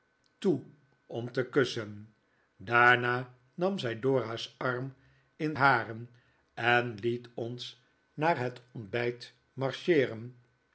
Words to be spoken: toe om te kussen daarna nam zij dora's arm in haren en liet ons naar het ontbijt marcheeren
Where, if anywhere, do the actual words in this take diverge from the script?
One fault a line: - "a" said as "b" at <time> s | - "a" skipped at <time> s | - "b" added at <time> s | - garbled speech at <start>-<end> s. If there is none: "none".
none